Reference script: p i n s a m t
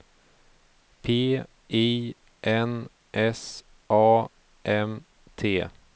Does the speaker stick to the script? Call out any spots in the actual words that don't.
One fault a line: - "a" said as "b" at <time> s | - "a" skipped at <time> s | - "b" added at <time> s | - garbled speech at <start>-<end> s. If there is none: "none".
none